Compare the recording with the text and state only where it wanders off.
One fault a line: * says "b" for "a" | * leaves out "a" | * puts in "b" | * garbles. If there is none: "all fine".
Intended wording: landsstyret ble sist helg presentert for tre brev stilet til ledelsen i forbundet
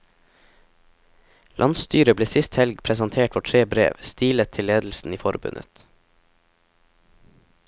all fine